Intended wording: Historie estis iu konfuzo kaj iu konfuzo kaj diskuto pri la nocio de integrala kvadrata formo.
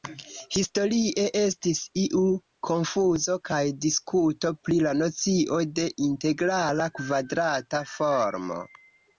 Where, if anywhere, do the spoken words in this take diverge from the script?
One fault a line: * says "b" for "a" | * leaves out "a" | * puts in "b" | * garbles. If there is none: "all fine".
* leaves out "iu konfuzo kaj"